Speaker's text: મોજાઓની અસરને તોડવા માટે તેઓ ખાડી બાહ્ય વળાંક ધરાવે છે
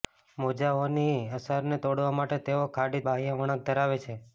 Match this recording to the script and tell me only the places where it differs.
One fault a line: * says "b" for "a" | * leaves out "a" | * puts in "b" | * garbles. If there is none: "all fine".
all fine